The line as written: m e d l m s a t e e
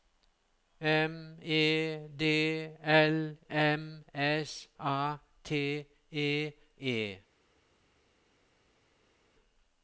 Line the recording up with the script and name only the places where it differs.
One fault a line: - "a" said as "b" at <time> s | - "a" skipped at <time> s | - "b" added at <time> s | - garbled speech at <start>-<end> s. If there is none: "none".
none